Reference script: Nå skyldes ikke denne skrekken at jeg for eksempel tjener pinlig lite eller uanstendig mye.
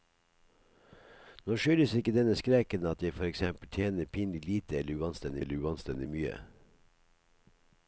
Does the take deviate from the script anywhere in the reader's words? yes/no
yes